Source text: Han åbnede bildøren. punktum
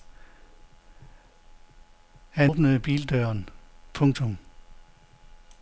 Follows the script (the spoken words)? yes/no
yes